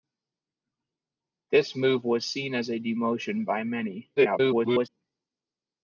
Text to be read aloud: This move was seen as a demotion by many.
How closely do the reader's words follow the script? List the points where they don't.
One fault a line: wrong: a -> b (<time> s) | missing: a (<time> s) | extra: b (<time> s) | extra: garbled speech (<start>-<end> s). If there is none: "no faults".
extra: garbled speech (4.2-4.9 s)